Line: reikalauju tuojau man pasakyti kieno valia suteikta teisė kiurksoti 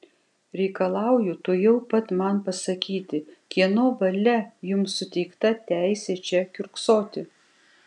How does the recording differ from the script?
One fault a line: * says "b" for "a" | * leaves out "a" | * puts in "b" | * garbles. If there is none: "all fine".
* puts in "pat"
* puts in "jums"
* puts in "čia"